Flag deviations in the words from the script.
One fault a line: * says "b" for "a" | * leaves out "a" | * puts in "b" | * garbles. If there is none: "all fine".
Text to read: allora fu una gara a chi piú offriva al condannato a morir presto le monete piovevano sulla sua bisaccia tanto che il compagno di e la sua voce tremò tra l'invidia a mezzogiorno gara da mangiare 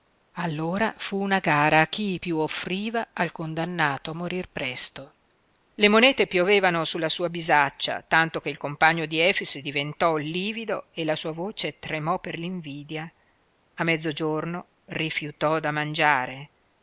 * puts in "efix diventò livido"
* says "per" for "tra"
* says "rifiutò" for "gara"